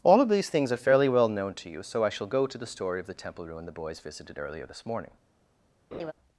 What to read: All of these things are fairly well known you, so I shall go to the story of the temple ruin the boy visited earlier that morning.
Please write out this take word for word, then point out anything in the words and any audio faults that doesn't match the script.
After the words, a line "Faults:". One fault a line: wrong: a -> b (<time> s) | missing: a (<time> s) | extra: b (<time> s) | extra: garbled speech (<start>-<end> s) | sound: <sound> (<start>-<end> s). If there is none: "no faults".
All of these things are fairly well known to you, so I shall go to the story of the temple ruin the boys visited earlier this morning.
Faults:
extra: to (1.6 s)
wrong: boy -> boys (3.7 s)
wrong: that -> this (4.7 s)
sound: laugh (5.9-6.1 s)